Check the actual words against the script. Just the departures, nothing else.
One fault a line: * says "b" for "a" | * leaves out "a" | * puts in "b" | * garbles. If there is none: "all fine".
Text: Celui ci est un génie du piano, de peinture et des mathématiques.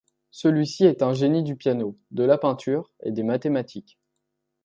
* puts in "la"